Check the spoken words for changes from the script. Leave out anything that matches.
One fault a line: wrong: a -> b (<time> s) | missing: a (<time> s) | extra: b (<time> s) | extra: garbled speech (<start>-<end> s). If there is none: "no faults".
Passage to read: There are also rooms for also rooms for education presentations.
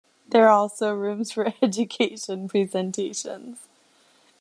missing: also rooms for (1.5 s)